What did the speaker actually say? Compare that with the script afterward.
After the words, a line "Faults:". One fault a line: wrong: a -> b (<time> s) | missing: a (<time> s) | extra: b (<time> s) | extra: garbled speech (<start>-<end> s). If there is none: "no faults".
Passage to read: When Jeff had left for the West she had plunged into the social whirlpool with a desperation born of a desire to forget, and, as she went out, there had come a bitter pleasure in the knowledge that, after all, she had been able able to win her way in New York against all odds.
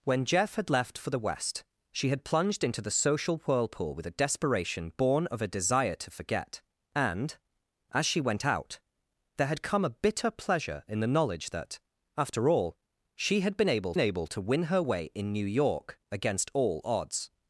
When Jeff had left for the West she had plunged into the social whirlpool with a desperation born of a desire to forget, and, as she went out, there had come a bitter pleasure in the knowledge that, after all, she had been able able to win her way in New York against all odds.
Faults:
no faults